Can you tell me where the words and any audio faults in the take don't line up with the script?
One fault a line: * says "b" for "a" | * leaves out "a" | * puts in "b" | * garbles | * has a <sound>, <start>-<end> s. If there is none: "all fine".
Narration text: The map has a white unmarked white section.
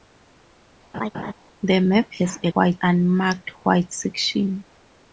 * has a laugh, 0.9-1.3 s